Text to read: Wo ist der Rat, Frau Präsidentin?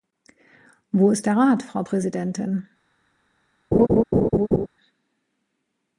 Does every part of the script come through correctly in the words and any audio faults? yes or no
no